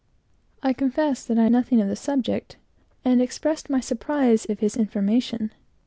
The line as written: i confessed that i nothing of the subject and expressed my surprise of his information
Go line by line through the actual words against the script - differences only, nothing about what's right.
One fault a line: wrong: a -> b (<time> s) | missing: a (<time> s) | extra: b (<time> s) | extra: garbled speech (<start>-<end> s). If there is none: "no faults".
no faults